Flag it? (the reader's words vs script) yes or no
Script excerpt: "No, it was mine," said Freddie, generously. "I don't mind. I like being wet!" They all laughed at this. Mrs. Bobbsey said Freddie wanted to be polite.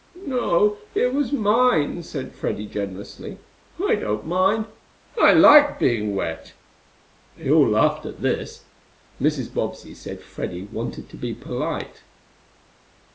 no